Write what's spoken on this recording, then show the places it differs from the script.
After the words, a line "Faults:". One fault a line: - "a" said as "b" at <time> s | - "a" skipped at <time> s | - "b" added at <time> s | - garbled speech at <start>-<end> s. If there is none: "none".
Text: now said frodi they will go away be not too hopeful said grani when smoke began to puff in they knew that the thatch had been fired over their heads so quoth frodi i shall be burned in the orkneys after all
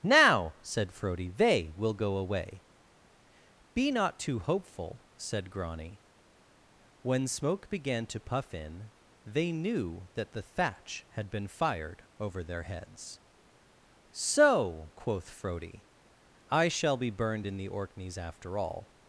now said frodi they will go away be not too hopeful said grani when smoke began to puff in they knew that the thatch had been fired over their heads so quoth frodi i shall be burned in the orkneys after all
Faults:
none